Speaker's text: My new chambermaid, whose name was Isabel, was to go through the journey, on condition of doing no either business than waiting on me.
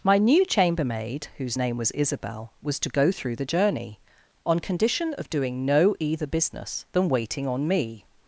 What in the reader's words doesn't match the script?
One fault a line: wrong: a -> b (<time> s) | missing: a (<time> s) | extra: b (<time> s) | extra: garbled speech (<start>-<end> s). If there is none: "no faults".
no faults